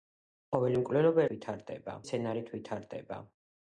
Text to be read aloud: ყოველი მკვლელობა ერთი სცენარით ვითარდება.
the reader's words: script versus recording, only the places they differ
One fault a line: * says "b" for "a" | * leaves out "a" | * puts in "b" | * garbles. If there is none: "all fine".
* says "ვითარდება" for "ერთი"